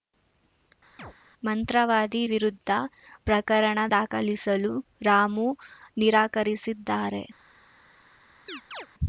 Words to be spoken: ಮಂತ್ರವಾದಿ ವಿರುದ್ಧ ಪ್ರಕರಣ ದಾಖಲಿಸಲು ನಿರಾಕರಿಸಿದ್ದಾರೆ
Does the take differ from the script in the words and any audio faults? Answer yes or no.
yes